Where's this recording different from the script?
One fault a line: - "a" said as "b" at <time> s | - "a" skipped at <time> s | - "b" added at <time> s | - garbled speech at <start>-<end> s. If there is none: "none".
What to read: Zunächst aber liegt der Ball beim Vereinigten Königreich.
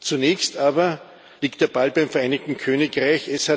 none